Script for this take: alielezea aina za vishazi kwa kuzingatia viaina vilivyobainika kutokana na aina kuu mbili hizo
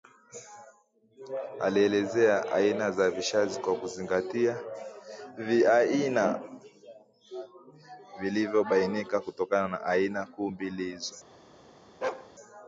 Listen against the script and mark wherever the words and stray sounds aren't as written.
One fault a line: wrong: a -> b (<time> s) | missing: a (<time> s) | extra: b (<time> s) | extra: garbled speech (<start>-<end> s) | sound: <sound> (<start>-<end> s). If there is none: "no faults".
sound: bark (12.0-12.3 s)